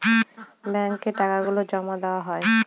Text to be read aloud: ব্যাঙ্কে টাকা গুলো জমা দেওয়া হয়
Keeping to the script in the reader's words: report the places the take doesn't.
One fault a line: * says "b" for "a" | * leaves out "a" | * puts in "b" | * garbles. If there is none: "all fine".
all fine